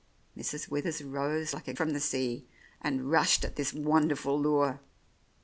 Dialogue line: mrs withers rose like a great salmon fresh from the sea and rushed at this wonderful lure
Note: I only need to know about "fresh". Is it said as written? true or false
false